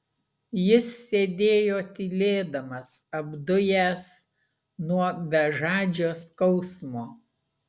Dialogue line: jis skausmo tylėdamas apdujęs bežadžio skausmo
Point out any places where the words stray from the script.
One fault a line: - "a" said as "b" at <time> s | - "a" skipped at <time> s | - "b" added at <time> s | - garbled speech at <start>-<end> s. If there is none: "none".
- "skausmo" said as "sėdėjo" at 1.1 s
- "nuo" added at 4.9 s